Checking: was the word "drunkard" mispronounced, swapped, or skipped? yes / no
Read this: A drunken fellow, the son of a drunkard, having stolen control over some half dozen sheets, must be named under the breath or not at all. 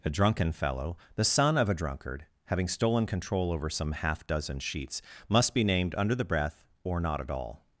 no